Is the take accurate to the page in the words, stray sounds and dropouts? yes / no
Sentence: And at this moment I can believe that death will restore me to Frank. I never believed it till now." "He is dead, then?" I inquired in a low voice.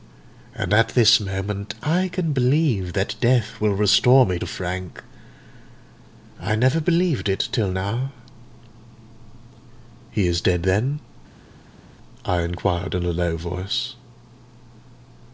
yes